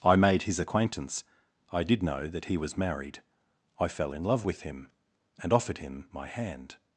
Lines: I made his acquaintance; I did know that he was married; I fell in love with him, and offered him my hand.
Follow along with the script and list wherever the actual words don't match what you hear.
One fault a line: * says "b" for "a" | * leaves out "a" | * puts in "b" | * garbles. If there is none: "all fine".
all fine